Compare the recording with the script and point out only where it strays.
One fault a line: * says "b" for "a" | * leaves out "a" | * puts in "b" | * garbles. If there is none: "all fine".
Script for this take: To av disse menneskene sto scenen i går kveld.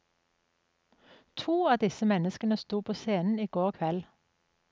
* puts in "på"